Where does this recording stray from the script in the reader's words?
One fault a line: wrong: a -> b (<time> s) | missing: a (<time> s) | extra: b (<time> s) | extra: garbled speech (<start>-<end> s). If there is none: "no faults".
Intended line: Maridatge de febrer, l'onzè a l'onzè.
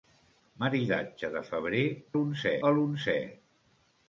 no faults